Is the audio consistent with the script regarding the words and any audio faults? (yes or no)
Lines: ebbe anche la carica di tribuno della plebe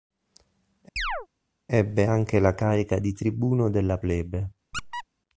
no